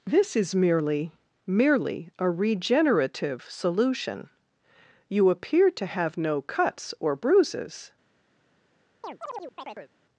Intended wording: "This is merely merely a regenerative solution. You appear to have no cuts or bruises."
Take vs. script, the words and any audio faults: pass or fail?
fail